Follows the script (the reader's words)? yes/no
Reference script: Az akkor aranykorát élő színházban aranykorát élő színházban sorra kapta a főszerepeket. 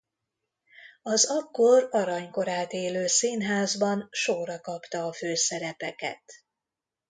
no